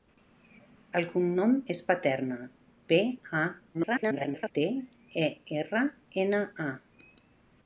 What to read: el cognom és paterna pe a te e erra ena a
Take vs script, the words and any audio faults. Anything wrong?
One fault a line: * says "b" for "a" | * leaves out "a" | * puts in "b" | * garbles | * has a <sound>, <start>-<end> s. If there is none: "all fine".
* garbles